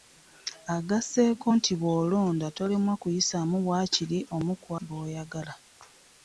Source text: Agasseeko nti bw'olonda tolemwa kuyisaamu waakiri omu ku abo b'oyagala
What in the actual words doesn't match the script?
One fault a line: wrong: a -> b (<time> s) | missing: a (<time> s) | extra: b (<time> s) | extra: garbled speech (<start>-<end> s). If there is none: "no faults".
missing: abo (4.7 s)